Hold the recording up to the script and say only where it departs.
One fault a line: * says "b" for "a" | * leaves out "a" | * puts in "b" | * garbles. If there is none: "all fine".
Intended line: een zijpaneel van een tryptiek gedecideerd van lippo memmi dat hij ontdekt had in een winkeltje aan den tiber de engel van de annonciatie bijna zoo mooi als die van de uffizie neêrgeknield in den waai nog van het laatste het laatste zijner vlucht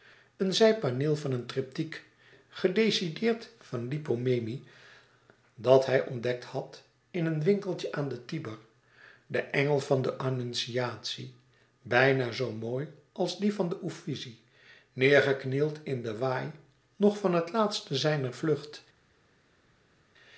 * leaves out "het laatste"